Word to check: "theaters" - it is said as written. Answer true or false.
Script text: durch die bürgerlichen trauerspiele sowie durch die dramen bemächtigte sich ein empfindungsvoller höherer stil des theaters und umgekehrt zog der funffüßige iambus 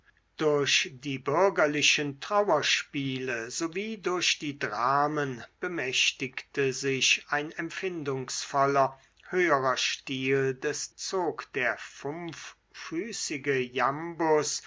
false